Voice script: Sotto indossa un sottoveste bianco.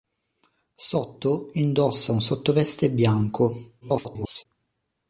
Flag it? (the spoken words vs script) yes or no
yes